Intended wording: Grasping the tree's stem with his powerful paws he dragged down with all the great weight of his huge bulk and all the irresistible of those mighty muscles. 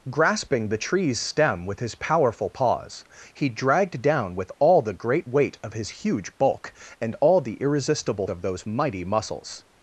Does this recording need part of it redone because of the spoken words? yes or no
no